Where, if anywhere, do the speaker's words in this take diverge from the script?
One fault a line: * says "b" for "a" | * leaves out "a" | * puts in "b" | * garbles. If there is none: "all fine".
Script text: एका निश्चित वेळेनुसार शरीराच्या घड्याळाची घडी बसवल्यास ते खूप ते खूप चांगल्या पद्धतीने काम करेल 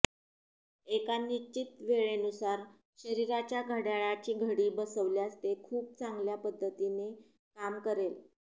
* leaves out "ते खूप"